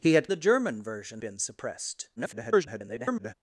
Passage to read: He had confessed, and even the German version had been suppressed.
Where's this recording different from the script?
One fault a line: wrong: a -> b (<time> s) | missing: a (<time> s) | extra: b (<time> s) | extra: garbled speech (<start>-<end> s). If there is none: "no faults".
missing: confessed and even (0.3 s)
missing: had (1.2 s)
extra: garbled speech (2.2-3.3 s)